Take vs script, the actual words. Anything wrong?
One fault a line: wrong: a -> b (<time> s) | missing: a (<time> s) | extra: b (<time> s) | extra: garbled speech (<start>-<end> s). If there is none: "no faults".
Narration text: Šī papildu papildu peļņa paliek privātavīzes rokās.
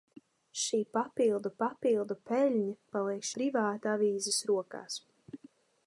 no faults